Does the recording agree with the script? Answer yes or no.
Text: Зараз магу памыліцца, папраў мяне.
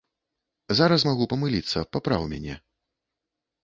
yes